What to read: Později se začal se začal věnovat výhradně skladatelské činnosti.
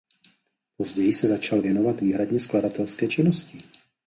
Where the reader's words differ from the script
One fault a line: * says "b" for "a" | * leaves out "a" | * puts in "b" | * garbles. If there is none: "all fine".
* leaves out "se začal"